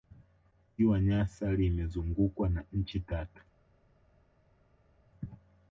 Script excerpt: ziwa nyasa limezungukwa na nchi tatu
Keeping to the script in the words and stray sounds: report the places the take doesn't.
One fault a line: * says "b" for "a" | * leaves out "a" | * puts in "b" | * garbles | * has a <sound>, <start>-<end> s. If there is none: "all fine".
all fine